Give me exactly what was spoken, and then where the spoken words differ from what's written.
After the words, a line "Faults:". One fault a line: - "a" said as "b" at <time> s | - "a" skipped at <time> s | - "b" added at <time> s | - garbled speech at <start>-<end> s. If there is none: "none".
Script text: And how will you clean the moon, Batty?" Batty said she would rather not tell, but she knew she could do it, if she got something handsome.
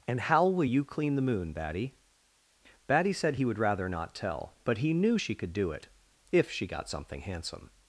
And how will you clean the moon, Batty?" Batty said he would rather not tell, but he knew she could do it, if she got something handsome.
Faults:
- "she" said as "he" at 3.3 s
- "she" said as "he" at 4.8 s